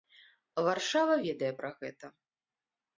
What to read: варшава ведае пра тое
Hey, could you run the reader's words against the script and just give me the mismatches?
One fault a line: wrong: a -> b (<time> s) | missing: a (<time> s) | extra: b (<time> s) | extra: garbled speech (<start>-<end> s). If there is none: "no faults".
wrong: тое -> гэта (1.8 s)